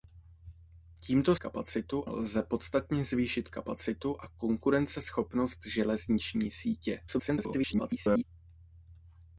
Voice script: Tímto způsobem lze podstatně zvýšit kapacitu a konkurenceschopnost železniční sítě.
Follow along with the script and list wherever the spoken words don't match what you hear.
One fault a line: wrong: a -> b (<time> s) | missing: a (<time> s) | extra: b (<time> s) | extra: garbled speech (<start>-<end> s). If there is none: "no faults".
wrong: způsobem -> kapacitu (1.4 s)
extra: garbled speech (7.1-8.2 s)